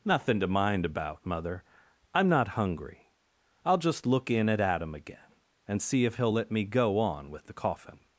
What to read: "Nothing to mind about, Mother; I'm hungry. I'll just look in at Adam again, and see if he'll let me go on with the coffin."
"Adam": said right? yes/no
yes